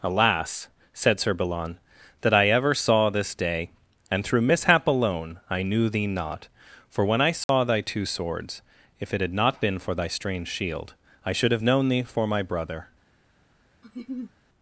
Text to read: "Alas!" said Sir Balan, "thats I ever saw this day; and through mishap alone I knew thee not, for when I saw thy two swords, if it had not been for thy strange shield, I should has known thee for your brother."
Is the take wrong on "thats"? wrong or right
wrong